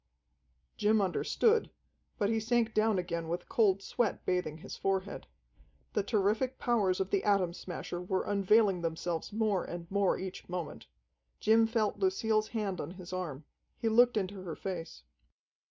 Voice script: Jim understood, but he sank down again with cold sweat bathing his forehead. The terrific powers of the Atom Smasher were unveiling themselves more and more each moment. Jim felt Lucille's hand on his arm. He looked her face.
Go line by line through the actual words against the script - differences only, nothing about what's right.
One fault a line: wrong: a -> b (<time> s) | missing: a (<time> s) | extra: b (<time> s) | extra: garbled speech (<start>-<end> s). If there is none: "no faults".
extra: into (14.2 s)